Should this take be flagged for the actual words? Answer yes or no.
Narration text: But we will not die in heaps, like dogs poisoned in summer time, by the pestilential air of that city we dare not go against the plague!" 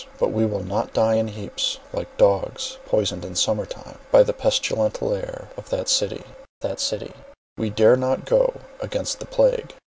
yes